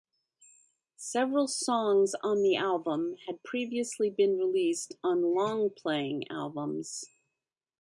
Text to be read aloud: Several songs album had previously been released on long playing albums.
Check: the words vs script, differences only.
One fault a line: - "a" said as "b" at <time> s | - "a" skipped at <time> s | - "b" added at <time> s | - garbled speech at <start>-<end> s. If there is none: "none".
- "on the" added at 2.2 s